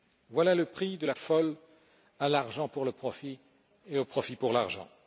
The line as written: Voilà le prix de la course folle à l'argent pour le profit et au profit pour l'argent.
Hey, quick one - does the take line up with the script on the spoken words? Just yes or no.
no